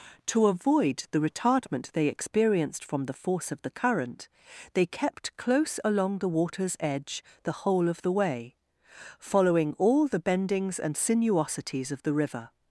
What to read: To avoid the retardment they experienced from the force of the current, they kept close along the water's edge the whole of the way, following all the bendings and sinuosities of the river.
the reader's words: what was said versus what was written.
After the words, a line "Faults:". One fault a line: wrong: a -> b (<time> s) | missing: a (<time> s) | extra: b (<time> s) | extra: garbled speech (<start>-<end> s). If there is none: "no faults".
To avoid the retardment they experienced from the force of the current, they kept close along the water's edge the whole of the way, following all the bendings and sinuosities of the river.
Faults:
no faults